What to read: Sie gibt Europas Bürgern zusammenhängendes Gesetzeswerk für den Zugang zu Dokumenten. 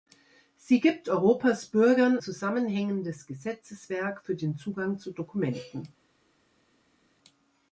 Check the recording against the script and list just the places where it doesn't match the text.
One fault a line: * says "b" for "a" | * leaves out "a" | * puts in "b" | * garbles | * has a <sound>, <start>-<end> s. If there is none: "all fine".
all fine